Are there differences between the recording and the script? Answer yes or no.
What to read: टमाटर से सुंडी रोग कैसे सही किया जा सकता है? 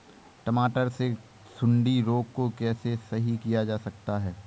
yes